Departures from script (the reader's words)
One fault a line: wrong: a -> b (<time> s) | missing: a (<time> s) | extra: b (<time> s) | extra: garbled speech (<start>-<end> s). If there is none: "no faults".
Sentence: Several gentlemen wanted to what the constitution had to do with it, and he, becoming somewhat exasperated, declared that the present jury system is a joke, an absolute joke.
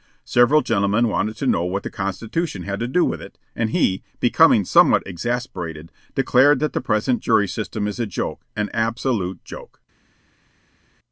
extra: know (1.4 s)